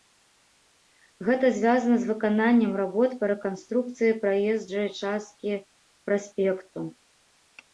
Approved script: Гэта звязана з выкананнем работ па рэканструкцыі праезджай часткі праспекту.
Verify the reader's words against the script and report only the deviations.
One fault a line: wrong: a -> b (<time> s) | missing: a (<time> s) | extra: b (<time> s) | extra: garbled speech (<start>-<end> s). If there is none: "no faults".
no faults